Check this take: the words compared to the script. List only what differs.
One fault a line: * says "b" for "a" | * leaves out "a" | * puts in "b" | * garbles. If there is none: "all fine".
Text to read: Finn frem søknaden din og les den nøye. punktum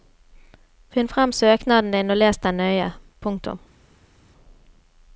all fine